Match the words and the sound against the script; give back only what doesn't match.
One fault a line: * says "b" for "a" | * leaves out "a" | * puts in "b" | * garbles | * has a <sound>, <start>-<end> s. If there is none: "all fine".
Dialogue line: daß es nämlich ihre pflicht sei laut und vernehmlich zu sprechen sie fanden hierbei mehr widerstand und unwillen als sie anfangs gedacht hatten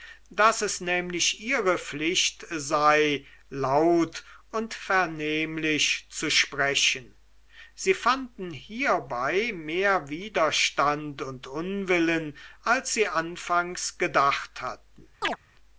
* has a chirp, 15.2-15.4 s